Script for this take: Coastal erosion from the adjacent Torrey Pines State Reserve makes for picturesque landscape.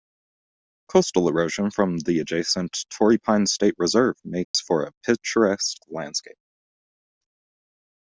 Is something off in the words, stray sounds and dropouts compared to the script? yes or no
yes